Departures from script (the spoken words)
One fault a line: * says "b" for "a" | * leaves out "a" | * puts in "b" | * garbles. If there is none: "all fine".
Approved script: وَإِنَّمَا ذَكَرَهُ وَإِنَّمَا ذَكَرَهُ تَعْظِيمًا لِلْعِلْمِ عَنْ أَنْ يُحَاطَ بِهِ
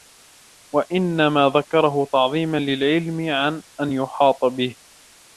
* leaves out "وَإِنَّمَا ذَكَرَهُ"